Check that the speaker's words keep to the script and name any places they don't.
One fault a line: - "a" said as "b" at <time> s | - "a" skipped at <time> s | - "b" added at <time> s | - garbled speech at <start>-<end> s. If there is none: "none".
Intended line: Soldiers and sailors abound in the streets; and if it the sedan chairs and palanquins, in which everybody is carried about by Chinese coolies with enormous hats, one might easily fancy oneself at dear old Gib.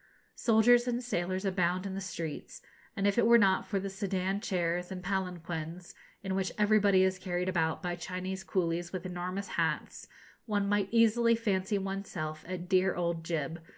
- "were not for" added at 3.3 s